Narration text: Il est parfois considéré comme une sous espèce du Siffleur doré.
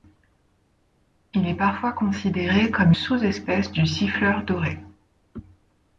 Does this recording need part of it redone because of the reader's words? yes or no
yes